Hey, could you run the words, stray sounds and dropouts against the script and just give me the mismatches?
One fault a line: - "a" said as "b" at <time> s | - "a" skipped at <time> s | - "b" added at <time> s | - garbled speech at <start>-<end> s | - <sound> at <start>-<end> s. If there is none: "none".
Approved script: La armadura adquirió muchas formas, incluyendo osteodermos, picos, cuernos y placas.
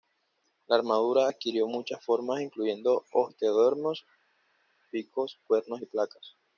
none